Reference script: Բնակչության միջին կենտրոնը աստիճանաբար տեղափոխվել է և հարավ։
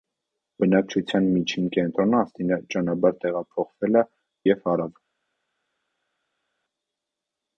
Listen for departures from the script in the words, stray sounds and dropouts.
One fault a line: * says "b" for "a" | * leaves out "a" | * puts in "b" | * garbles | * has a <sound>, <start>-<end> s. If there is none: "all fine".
all fine